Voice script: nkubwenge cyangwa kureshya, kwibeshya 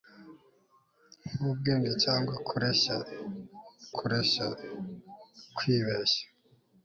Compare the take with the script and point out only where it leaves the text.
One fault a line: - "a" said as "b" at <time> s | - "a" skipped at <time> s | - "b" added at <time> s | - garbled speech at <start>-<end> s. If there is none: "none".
- "kureshya" added at 4.0 s